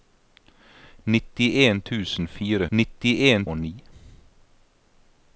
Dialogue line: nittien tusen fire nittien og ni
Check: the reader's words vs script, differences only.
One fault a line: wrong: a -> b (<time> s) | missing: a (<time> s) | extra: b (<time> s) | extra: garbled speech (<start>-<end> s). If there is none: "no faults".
no faults